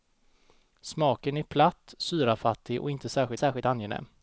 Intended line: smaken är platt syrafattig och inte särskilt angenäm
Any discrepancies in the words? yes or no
yes